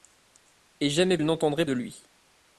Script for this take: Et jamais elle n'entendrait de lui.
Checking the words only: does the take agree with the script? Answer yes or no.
yes